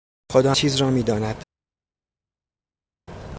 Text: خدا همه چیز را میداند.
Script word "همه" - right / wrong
wrong